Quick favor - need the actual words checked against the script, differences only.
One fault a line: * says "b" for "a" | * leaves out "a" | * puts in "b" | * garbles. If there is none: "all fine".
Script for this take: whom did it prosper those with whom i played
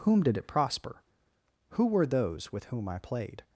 * puts in "who were"